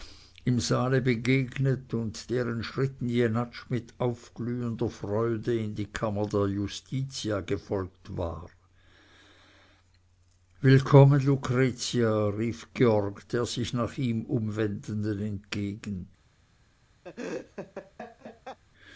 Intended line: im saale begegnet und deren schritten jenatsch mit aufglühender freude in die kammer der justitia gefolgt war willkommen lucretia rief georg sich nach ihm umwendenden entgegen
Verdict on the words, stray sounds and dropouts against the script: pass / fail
fail